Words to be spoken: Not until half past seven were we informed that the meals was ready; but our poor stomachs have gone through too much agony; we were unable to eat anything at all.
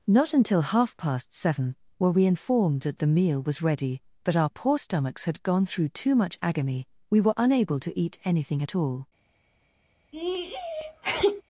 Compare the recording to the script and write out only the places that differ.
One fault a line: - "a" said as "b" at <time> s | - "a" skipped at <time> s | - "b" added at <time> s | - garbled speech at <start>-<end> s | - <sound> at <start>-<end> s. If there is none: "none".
- "meals" said as "meal" at 3.1 s
- "have" said as "had" at 5.2 s
- sneeze at 10.1-11.4 s